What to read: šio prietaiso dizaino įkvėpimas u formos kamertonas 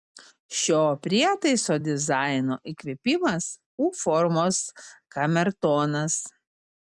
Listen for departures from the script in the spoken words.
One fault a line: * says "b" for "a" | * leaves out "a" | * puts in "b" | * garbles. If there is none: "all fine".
all fine